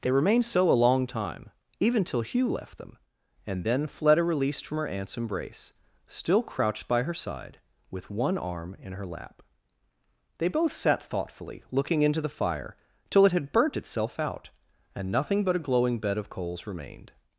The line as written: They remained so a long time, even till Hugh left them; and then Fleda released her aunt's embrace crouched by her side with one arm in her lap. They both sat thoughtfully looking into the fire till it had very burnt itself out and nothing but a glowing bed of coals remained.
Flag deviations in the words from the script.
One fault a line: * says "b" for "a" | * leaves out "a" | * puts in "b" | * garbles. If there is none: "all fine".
* puts in "from"
* puts in "still"
* leaves out "very"